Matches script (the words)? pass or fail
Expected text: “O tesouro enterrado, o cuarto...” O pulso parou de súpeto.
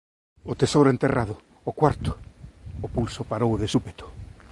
pass